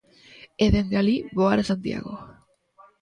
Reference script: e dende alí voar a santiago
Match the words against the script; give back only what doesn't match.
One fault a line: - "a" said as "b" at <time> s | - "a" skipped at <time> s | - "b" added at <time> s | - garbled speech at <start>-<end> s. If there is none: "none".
none